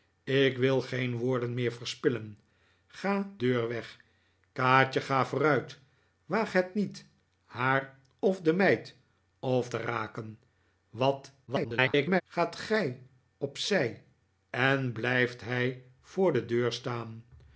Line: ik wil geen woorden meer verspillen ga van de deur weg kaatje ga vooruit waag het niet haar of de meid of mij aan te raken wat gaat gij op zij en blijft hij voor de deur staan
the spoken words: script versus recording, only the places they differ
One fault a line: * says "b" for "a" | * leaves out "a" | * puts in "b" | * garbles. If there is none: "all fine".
* leaves out "van de"
* leaves out "mij aan"
* garbles